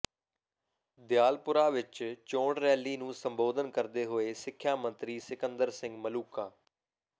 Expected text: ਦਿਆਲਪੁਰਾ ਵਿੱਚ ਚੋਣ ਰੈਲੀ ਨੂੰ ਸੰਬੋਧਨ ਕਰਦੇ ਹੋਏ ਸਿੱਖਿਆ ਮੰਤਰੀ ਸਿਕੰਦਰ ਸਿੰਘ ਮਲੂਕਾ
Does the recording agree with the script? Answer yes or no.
yes